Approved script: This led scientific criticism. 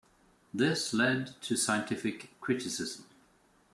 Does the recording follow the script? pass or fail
fail